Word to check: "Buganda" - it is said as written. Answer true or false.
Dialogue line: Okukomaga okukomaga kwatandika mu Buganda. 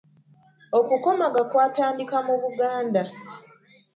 true